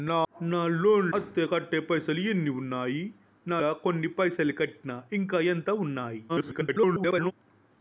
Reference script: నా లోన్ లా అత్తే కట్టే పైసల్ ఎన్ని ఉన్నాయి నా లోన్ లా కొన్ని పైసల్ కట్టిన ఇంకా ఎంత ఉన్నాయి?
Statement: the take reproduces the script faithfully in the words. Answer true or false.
false